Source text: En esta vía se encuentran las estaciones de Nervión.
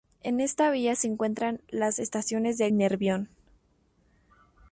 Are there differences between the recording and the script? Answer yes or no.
no